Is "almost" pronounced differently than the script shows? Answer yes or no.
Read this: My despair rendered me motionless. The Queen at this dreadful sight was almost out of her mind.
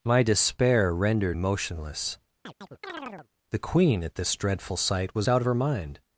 yes